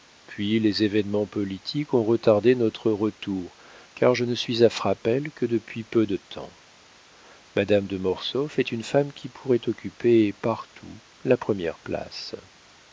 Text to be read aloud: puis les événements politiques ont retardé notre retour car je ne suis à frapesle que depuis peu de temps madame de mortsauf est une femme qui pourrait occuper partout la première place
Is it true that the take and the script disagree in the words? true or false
false